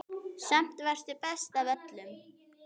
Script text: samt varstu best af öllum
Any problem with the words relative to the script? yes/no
no